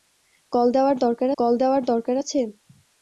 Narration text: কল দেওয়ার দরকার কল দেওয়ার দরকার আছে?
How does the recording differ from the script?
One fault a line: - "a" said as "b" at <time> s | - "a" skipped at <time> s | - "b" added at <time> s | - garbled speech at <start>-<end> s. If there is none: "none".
none